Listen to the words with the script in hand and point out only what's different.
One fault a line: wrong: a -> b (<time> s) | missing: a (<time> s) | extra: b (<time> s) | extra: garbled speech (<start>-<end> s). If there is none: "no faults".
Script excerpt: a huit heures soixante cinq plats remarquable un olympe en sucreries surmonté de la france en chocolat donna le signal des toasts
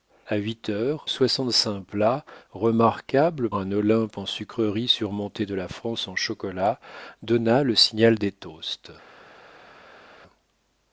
no faults